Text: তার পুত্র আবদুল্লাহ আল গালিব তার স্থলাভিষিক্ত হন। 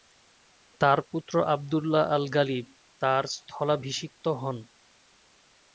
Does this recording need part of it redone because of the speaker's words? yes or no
no